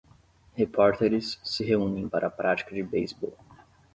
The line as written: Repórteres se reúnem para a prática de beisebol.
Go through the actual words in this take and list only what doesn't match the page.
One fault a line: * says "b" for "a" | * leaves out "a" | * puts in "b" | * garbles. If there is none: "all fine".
all fine